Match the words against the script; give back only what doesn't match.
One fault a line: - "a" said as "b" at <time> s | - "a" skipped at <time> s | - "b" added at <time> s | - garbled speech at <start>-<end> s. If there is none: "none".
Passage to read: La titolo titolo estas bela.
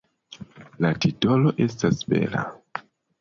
- "titolo" skipped at 1.5 s